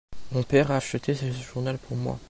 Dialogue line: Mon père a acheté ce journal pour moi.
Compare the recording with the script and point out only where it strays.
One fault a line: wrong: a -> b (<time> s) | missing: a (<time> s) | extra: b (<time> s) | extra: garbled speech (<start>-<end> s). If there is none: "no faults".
no faults